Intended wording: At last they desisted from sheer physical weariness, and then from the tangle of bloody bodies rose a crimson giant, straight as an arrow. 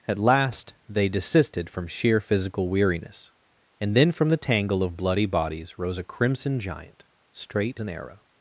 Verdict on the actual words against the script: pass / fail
fail